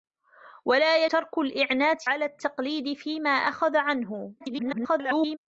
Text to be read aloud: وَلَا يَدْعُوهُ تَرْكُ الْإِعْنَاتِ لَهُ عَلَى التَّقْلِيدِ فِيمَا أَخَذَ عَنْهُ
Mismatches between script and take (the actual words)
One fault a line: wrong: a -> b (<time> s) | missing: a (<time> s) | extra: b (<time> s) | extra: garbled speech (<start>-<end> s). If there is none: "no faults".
missing: يَدْعُوهُ (1.1 s)
missing: لَهُ (2.1 s)
extra: garbled speech (4.4-5.4 s)